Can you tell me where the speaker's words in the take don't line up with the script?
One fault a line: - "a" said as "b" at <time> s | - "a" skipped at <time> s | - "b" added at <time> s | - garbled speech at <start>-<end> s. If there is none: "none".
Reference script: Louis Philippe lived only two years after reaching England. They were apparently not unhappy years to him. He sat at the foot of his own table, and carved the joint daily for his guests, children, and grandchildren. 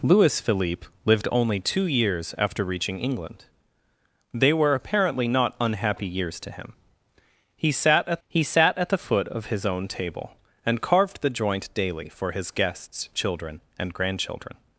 - "he sat at" added at 8.3 s